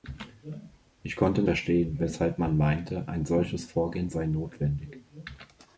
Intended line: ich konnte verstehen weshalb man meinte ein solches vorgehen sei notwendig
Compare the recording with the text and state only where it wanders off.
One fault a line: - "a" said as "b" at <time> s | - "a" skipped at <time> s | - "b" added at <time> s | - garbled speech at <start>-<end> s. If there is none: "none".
none